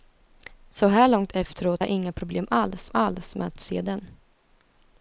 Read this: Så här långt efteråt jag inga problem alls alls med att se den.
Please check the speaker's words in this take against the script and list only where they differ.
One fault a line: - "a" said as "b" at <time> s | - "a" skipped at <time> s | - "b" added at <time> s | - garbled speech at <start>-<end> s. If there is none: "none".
none